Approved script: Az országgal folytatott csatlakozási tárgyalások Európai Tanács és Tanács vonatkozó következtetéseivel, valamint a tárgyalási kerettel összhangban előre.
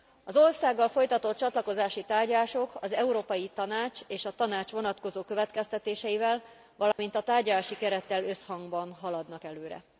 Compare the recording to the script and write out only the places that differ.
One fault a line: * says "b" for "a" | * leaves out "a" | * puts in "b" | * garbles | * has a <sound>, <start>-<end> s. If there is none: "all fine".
* puts in "az"
* puts in "a"
* has a dropout, 6.9-7.0 s
* puts in "haladnak"